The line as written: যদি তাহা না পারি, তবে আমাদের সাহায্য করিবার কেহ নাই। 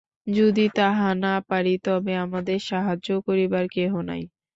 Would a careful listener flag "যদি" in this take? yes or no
no